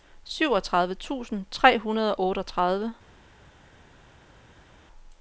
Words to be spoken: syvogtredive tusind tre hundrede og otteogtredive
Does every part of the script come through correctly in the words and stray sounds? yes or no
yes